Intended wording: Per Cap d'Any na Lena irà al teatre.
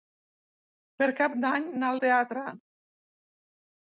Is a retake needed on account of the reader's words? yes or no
yes